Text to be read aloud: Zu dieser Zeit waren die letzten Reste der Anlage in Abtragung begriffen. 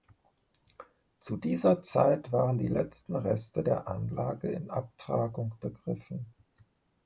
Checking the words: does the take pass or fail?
pass